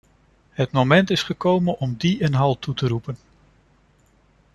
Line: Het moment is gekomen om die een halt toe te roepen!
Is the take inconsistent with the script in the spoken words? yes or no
no